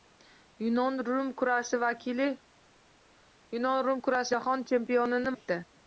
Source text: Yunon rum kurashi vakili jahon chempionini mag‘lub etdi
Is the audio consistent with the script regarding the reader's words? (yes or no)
no